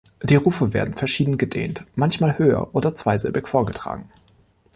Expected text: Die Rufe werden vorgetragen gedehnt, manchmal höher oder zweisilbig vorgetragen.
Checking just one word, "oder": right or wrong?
right